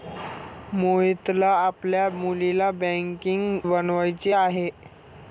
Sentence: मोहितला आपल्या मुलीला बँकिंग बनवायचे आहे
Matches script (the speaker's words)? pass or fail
pass